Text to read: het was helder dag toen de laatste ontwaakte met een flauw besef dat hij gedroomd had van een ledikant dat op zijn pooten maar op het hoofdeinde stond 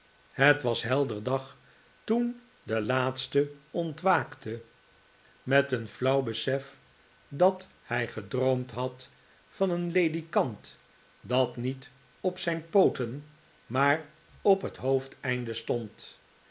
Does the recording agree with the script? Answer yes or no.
no